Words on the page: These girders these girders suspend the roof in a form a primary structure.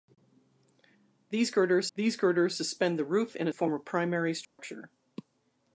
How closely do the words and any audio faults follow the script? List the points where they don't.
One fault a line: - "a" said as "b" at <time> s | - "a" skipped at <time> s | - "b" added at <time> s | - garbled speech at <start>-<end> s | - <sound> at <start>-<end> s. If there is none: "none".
- dropout at 4.4-4.6 s